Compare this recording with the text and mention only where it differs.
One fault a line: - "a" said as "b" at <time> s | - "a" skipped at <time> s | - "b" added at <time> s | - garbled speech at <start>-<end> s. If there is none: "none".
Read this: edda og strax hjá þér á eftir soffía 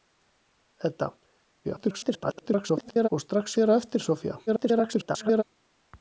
- garbled speech at 1.6-3.1 s
- "hjá" skipped at 3.6 s
- garbled speech at 4.5-5.4 s